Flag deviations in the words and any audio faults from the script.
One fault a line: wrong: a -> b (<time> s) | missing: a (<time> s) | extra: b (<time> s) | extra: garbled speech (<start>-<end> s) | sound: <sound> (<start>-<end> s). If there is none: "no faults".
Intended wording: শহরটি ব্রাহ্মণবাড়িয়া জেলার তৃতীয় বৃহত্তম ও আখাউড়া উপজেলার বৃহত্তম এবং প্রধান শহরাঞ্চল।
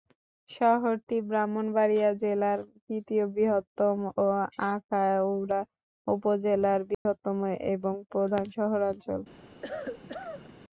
sound: dropout (6.9-7.1 s)
sound: cough (9.6-10.5 s)